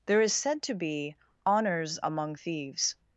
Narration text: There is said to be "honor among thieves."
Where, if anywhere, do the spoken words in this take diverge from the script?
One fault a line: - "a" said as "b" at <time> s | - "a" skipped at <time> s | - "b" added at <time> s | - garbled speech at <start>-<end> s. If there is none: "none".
- "honor" said as "honors" at 1.4 s